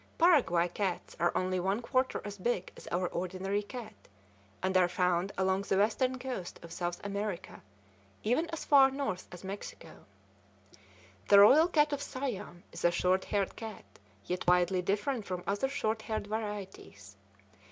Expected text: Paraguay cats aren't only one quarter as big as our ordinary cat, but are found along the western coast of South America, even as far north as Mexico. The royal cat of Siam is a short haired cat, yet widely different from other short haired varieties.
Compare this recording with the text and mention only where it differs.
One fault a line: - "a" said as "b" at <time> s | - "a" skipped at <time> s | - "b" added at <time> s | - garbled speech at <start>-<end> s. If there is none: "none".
- "aren't" said as "are" at 1.2 s
- "but" said as "and" at 4.6 s